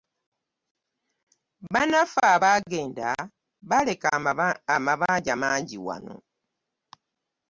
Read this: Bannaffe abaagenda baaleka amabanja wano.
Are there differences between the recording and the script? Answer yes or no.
yes